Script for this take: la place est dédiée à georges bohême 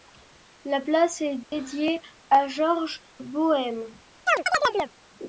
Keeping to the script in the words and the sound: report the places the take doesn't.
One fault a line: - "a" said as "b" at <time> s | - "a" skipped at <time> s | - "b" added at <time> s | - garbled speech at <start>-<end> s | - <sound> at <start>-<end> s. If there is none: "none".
- dropout at 1.4-1.5 s
- chirp at 4.3-4.9 s